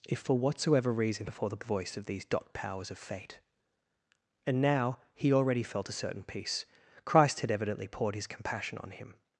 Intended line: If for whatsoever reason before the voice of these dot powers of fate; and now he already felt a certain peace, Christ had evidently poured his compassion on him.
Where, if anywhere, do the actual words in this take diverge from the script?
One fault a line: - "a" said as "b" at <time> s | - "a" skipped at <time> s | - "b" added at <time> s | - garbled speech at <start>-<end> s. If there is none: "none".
none